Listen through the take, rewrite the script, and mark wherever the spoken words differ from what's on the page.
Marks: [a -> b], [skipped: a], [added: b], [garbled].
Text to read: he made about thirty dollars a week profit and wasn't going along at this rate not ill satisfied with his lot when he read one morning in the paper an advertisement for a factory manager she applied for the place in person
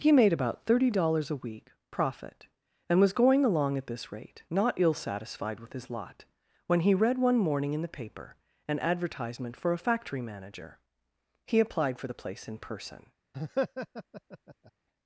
he made about thirty dollars a week profit and [wasn't -> was] going along at this rate not ill satisfied with his lot when he read one morning in the paper an advertisement for a factory manager [she -> he] applied for the place in person